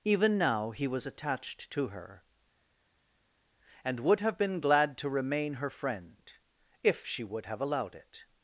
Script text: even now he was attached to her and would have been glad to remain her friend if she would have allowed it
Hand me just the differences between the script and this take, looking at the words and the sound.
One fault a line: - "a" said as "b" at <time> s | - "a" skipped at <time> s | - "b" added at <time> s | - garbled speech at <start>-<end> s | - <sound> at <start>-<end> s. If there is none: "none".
none